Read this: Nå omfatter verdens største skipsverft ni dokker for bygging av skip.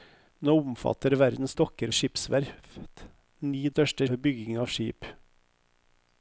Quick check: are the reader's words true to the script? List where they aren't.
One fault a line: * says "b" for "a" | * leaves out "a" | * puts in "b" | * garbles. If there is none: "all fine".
* says "dokker" for "største"
* says "største" for "dokker"